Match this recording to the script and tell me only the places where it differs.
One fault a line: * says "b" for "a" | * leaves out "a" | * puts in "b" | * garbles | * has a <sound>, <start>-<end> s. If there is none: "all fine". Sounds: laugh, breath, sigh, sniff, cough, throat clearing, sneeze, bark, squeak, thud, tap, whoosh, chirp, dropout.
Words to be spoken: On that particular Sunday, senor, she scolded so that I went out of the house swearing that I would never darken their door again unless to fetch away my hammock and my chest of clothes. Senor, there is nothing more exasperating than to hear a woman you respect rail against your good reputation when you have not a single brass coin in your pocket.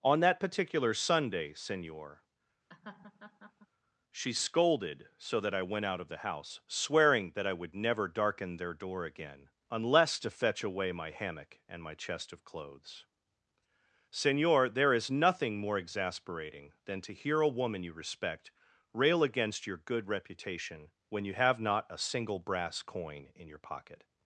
* has a laugh, 2.7-3.7 s